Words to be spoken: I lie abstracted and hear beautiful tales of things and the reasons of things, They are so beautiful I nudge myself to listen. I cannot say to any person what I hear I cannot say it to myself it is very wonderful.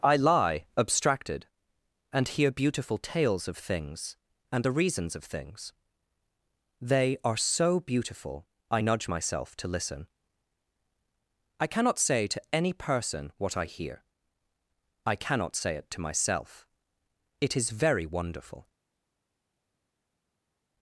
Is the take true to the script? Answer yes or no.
yes